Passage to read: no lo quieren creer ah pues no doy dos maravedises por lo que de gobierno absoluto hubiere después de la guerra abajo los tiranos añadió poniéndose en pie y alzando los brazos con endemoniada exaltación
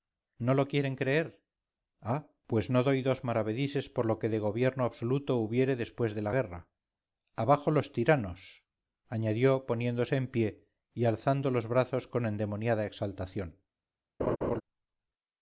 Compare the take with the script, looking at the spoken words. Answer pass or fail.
pass